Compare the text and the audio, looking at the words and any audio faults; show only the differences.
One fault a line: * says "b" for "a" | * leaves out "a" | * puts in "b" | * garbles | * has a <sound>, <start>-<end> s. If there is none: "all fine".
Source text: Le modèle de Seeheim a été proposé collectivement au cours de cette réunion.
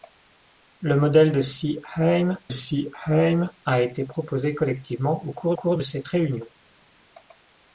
* puts in "Seeheim"
* puts in "cours"